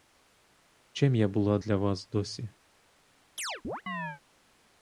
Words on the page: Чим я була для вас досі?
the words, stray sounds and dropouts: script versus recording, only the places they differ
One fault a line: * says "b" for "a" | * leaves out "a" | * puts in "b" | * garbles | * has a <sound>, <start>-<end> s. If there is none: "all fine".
* has a chirp, 3.4-4.2 s